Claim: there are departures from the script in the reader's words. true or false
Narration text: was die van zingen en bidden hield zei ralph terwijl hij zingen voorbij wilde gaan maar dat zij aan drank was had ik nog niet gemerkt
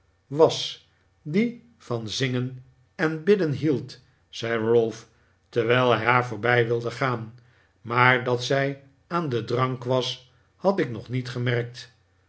true